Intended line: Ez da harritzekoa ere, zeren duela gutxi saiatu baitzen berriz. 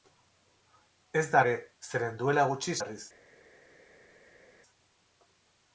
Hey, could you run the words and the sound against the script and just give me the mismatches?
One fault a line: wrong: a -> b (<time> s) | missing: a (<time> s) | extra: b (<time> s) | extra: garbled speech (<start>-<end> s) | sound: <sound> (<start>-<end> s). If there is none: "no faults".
missing: harritzekoa (1.4 s)
missing: saiatu baitzen (2.8 s)